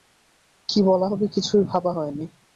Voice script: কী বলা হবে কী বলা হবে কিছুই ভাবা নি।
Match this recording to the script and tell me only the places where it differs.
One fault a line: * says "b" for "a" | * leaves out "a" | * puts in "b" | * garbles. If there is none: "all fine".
* leaves out "কী বলা হবে"
* puts in "হয়"